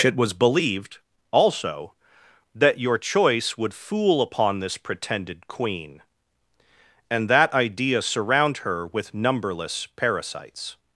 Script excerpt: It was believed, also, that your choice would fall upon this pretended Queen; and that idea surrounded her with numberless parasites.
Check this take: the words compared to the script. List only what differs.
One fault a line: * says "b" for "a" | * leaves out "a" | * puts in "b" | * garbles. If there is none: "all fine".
* says "fool" for "fall"
* says "surround" for "surrounded"